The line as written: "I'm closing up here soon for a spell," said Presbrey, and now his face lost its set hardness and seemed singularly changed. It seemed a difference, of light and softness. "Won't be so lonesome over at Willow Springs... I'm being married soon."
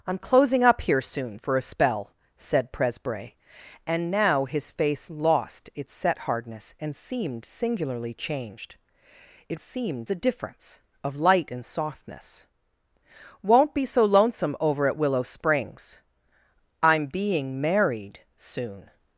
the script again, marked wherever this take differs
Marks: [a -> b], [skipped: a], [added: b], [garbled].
"I'm closing up here soon for a spell," said Presbrey, and now his face lost its set hardness and seemed singularly changed. It seemed a difference, of light and softness. "Won't be so lonesome over at Willow Springs... I'm being married soon."